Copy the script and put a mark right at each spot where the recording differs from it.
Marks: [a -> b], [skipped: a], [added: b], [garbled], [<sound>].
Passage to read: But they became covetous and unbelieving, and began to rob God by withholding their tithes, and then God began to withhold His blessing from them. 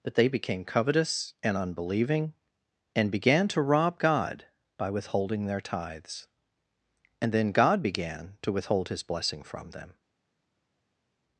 But they became covetous and unbelieving, and began to rob God by withholding their tithes, and then God began to withhold His blessing from them.